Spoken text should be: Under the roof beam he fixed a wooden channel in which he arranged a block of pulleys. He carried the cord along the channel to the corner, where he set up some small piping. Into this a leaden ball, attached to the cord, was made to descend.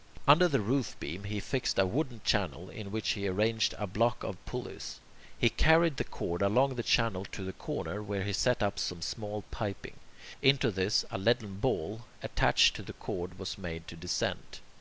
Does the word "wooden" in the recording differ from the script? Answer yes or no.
no